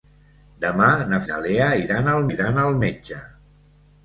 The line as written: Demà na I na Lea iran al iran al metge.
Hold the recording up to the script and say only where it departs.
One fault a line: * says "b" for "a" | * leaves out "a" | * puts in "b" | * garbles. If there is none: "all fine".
all fine